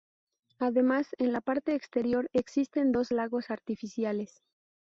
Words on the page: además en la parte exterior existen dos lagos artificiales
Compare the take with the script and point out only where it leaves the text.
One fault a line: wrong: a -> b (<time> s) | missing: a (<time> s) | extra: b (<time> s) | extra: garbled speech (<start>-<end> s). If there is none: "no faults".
no faults